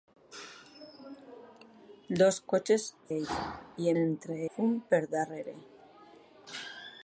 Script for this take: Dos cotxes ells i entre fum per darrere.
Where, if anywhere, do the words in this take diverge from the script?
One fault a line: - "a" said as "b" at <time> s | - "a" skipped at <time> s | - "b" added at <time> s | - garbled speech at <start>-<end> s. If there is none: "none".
none